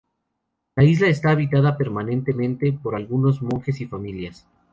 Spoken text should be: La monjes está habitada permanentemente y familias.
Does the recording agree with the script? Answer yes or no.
no